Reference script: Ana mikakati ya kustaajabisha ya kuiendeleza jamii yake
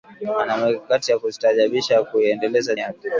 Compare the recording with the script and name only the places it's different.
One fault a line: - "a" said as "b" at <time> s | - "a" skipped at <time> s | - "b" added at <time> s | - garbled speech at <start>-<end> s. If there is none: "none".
- "jamii" skipped at 2.8 s